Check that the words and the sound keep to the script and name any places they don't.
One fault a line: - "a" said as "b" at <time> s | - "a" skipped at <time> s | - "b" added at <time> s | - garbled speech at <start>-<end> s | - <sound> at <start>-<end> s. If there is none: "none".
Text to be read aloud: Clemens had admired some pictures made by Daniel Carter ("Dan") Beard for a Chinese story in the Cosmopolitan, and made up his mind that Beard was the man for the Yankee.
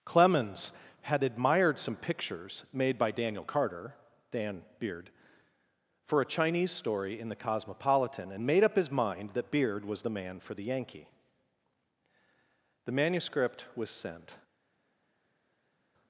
- "The manuscript was sent" added at 12.8 s